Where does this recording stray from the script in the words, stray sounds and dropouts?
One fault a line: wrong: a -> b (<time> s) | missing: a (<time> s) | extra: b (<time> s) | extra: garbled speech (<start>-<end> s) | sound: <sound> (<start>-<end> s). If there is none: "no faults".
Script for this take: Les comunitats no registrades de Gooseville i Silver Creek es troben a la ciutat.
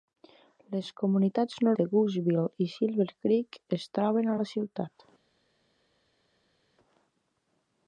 missing: registrades (1.7 s)